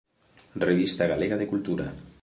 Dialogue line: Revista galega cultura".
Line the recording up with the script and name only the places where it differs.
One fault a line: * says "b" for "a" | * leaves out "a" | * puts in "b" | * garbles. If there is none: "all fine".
* puts in "de"